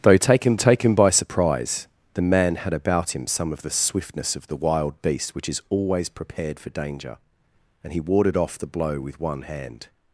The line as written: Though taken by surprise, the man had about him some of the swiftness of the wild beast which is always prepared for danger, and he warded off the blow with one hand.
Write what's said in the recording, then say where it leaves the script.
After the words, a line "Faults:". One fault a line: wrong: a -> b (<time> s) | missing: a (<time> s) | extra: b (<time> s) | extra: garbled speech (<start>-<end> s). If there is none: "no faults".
Though taken taken by surprise, the man had about him some of the swiftness of the wild beast which is always prepared for danger, and he warded off the blow with one hand.
Faults:
extra: taken (0.5 s)